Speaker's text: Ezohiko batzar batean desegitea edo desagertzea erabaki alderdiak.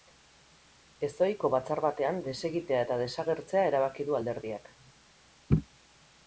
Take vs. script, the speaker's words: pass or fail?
fail